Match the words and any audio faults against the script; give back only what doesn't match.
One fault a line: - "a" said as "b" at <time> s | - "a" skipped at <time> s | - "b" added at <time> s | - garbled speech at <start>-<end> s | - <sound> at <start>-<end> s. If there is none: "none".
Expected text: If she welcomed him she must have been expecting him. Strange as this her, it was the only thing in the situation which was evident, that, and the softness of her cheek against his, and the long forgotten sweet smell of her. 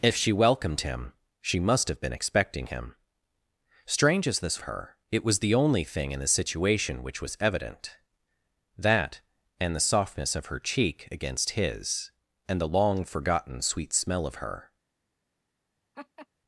- laugh at 15.9-16.3 s